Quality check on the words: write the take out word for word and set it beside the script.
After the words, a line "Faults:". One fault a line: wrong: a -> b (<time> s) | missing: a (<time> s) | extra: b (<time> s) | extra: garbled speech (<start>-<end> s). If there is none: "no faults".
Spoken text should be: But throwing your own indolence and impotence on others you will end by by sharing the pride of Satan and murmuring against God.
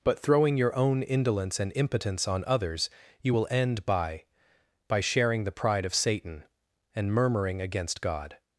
But throwing your own indolence and impotence on others you will end by by sharing the pride of Satan and murmuring against God.
Faults:
no faults